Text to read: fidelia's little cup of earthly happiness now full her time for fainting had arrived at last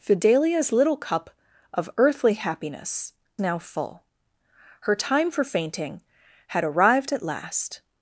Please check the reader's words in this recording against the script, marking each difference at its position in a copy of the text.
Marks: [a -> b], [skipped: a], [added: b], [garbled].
fidelia's little cup of earthly happiness now full her time for fainting had arrived at last